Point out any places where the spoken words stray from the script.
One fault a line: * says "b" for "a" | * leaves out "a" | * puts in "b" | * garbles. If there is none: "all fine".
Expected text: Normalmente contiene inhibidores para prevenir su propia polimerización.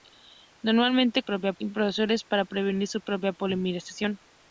* says "propia" for "contiene"